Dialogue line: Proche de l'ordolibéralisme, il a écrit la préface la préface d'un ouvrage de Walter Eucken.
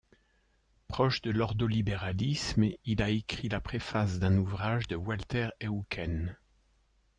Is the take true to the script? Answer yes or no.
no